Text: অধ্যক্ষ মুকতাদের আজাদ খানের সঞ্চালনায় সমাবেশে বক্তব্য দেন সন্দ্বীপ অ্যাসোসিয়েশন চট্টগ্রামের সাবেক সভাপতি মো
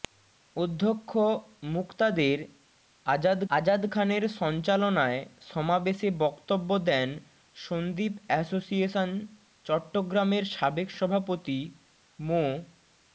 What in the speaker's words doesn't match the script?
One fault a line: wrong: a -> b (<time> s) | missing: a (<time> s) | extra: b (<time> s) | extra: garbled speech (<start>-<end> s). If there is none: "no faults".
extra: আজাদ (3.5 s)